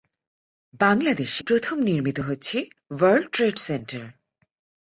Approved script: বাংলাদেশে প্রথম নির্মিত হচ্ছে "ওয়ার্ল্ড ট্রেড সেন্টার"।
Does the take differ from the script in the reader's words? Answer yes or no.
no